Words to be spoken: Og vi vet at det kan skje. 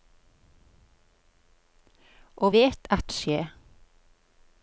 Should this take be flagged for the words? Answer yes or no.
yes